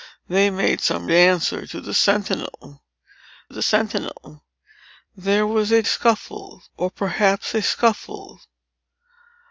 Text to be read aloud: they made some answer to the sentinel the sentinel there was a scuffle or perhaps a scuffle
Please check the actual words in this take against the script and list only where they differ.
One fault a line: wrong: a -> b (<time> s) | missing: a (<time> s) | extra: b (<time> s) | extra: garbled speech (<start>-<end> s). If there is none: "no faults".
no faults